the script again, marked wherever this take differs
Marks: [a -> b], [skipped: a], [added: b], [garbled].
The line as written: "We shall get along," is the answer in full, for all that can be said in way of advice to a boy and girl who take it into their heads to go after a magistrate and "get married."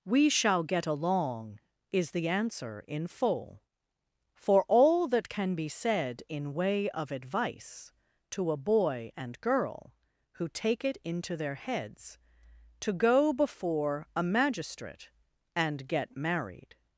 "We shall get along," is the answer in full, for all that can be said in way of advice to a boy and girl who take it into their heads to go [after -> before] a magistrate and "get married."